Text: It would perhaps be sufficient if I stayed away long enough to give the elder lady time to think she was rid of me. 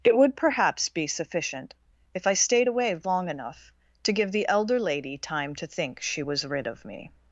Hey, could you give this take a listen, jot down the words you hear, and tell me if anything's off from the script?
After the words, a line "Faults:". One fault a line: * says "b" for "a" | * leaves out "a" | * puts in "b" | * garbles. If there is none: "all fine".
It would perhaps be sufficient if I stayed away long enough to give the elder lady time to think she was rid of me.
Faults:
all fine